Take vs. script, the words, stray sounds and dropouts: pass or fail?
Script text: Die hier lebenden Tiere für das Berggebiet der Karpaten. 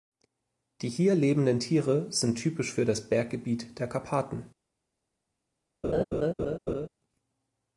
fail